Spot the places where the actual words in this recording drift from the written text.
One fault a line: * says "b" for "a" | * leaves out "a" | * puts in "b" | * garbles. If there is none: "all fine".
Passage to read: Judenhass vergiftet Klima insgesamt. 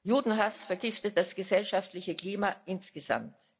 * puts in "das gesellschaftliche"